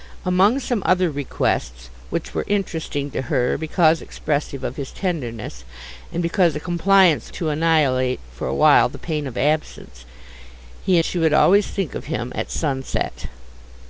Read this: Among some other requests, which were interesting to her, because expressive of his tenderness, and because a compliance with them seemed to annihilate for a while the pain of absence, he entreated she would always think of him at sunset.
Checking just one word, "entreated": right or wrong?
wrong